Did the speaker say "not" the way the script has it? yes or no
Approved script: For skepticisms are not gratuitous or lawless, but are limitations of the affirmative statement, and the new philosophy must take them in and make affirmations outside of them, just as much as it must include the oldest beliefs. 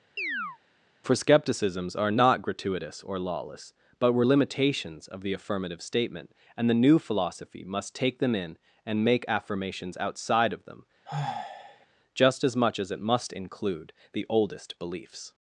yes